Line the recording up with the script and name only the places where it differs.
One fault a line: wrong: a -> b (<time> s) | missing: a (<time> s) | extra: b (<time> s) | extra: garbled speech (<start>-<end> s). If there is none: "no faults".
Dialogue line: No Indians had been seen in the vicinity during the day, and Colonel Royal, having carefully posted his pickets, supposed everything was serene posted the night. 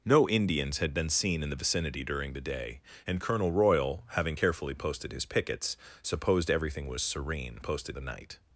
no faults